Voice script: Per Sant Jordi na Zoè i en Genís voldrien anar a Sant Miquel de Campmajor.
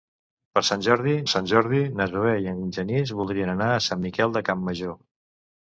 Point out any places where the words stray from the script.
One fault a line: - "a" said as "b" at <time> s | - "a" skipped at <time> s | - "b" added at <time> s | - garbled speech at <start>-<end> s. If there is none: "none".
- "Sant Jordi" added at 1.3 s